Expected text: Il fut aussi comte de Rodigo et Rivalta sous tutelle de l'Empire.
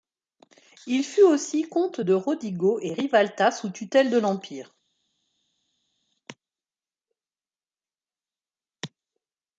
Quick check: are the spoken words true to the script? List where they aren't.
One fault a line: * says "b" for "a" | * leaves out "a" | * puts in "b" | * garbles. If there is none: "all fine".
all fine